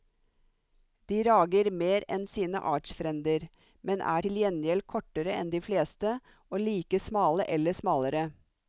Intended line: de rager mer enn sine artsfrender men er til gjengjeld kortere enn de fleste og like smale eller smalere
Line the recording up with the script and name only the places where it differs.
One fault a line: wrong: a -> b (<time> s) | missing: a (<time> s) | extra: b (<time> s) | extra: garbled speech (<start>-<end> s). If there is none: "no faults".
no faults